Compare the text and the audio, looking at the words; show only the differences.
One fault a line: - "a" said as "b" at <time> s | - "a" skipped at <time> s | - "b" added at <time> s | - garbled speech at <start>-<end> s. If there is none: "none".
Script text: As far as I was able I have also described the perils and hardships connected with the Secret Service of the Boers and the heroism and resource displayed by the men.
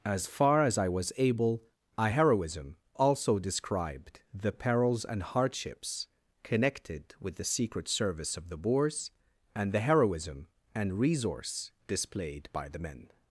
- "have" said as "heroism" at 2.1 s